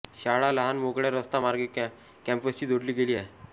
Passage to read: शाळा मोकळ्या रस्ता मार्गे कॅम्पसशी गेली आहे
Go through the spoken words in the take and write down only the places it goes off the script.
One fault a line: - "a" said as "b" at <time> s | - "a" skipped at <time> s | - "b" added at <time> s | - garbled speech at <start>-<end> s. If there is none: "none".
- "लहान" added at 0.5 s
- "जोडली" added at 2.7 s